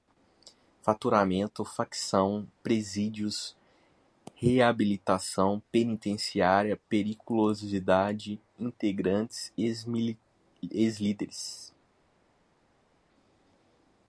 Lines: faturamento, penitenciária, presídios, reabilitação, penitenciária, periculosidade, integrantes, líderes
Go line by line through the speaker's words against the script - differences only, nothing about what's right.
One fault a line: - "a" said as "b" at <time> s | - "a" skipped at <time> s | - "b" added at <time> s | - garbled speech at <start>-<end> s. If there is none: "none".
- "penitenciária" said as "facção" at 1.6 s
- "ex" added at 9.6 s